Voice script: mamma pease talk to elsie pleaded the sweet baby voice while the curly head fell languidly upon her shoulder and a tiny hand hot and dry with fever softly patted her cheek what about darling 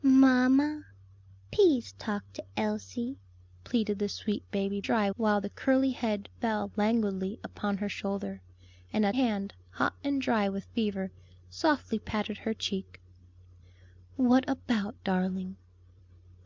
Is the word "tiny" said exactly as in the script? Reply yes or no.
no